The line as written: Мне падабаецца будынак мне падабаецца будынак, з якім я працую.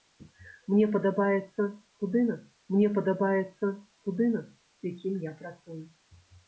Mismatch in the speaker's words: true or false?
false